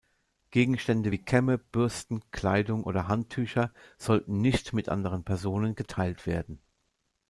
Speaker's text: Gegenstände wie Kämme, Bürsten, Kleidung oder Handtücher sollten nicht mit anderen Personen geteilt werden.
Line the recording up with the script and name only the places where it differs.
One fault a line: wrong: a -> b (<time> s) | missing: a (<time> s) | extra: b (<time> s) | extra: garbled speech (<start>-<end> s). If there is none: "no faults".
no faults